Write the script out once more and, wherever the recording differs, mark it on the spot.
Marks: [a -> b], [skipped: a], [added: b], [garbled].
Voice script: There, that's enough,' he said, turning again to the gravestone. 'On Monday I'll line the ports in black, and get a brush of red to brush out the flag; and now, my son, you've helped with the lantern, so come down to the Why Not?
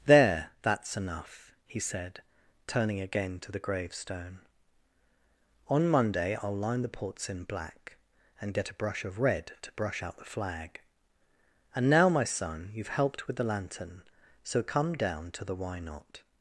There, that's enough,' he said, turning again to the gravestone. 'On Monday I'll line the ports in black, and get a brush of red to brush out the flag; and now, my son, you've helped with the lantern, so come down to the Why Not?